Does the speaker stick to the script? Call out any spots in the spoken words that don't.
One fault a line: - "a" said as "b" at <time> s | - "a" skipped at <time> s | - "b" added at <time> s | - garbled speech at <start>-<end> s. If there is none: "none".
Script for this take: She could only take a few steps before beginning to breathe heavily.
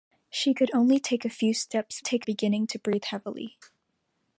- "before" said as "take" at 2.0 s